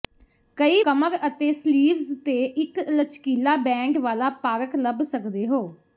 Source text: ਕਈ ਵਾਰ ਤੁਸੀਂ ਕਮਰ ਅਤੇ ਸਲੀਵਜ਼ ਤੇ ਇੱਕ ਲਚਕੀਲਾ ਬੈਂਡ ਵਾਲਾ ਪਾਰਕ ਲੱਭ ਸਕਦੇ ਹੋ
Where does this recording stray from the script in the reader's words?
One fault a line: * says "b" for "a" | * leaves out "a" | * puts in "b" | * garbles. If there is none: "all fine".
* leaves out "ਵਾਰ ਤੁਸੀਂ"